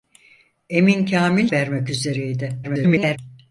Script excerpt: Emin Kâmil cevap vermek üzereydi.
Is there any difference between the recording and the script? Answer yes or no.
yes